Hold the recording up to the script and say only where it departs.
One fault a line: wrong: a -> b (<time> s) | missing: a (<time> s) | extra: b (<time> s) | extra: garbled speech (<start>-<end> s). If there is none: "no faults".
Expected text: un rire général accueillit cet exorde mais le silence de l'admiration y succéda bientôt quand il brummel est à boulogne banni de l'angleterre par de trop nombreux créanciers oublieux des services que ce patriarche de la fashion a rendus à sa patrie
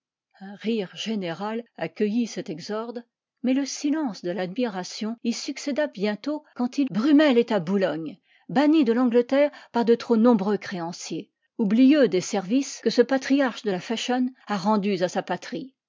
no faults